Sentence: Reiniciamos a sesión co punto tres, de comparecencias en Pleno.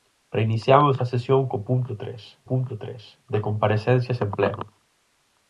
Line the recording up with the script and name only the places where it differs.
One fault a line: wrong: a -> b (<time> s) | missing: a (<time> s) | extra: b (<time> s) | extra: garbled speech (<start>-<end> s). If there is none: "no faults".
extra: punto tres (2.5 s)